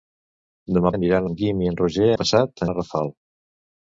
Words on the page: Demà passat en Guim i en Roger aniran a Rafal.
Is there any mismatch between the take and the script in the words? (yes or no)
yes